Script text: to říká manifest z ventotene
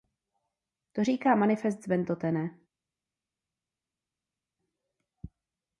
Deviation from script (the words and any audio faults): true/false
false